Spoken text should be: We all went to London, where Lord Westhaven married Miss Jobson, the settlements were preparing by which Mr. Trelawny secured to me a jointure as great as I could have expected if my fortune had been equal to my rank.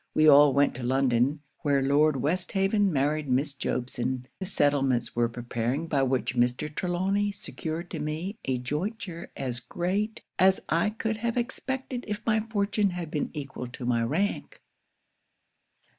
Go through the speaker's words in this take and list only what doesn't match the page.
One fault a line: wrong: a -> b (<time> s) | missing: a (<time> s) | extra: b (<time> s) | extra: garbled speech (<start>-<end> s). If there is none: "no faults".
no faults